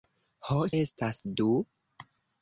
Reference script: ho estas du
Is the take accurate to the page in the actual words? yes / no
yes